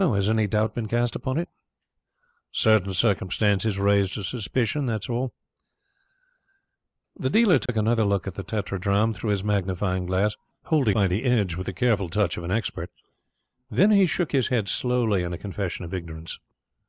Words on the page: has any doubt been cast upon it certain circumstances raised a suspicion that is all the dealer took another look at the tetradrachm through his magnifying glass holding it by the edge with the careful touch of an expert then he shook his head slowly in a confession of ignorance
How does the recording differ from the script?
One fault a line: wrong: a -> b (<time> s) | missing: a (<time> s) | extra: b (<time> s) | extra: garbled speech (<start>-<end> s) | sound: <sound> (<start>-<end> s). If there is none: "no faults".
sound: dropout (7.7-7.7 s)
missing: it (10.9 s)